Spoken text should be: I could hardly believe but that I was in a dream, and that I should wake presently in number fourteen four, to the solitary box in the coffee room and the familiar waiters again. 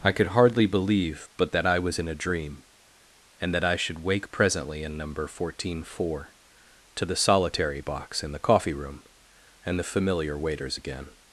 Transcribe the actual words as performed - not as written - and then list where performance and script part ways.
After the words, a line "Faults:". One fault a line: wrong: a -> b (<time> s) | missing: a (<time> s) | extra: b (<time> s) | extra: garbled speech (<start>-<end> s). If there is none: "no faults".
I could hardly believe but that I was in a dream, and that I should wake presently in number fourteen four, to the solitary box in the coffee room and the familiar waiters again.
Faults:
no faults